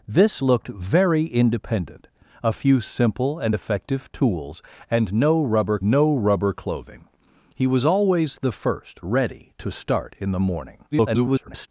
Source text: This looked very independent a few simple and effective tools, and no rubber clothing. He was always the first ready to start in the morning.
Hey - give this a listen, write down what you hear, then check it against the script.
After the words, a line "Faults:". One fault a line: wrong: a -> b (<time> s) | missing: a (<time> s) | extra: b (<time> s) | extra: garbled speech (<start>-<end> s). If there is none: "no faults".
This looked very independent a few simple and effective tools, and no rubber no rubber clothing. He was always the first ready to start in the morning. [garbled]
Faults:
extra: no rubber (5.8 s)
extra: garbled speech (10.9-11.7 s)